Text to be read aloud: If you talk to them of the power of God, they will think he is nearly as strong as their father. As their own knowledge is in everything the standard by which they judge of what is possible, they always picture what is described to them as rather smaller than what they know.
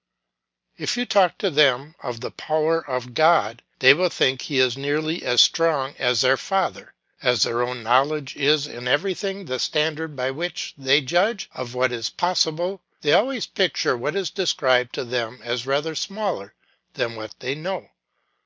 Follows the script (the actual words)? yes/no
yes